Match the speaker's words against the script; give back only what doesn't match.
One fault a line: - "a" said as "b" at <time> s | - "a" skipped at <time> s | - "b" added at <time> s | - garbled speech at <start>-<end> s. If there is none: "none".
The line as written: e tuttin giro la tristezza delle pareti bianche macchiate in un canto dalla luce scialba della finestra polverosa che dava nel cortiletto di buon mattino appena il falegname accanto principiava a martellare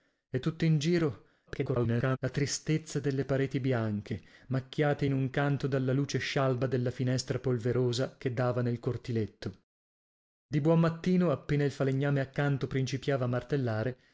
- garbled speech at 1.5-2.2 s